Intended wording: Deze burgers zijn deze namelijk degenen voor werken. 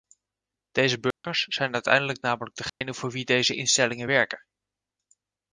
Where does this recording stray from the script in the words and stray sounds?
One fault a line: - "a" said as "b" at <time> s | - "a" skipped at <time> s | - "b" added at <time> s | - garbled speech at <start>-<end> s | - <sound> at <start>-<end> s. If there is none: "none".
- dropout at 1.1-1.2 s
- "deze" said as "uiteindelijk" at 1.7 s
- dropout at 2.7-2.8 s
- "wie deze instellingen" added at 3.1 s